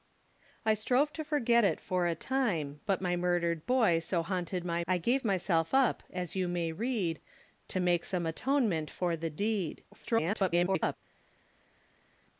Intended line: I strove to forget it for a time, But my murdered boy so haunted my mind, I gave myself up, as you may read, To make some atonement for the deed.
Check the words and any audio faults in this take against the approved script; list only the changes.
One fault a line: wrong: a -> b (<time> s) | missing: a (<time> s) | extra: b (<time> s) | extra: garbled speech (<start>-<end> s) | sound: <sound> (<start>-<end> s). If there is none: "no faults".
missing: mind (4.8 s)
extra: garbled speech (9.9-11.0 s)